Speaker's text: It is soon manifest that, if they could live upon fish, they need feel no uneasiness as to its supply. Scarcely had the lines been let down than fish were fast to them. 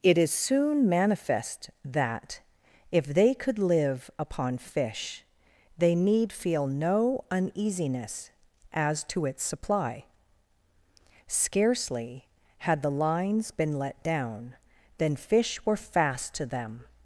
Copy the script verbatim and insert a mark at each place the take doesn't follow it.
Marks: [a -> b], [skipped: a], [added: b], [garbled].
It is soon manifest that, if they could live upon fish, they need feel no uneasiness as to its supply. Scarcely had the lines been let down than fish were fast to them.